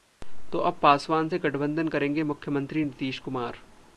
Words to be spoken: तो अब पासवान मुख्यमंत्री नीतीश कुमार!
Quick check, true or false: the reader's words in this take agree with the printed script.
false